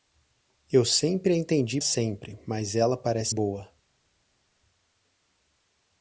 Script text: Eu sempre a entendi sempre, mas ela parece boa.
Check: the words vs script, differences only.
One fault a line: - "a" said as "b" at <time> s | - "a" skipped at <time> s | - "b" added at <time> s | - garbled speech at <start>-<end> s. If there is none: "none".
none